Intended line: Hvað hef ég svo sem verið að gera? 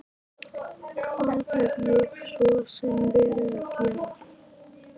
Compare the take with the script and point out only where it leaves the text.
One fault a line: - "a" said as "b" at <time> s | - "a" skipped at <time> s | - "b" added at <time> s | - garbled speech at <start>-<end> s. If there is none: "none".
none